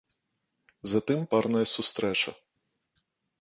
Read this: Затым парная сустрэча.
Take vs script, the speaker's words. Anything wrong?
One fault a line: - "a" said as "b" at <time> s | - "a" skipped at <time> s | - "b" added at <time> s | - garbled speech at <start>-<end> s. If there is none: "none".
none